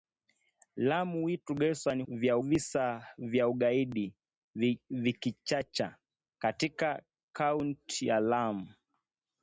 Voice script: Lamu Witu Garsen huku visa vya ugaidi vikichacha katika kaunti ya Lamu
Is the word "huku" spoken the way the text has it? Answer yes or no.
no